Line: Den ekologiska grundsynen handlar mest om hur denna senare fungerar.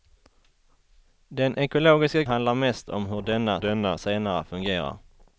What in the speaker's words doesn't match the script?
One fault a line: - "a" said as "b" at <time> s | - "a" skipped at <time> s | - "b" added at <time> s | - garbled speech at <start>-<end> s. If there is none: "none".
- "grundsynen" skipped at 2.2 s
- "denna" added at 3.6 s